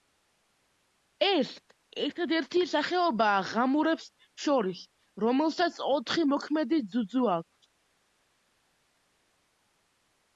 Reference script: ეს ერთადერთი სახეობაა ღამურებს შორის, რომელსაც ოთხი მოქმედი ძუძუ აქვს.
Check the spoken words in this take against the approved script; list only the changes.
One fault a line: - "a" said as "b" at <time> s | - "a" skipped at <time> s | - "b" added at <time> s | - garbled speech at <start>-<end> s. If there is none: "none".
none